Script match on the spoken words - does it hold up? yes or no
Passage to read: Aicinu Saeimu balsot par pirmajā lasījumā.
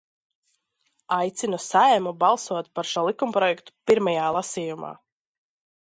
no